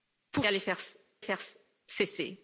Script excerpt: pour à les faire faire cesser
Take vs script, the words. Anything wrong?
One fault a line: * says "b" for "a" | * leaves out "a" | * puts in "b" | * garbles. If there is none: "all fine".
all fine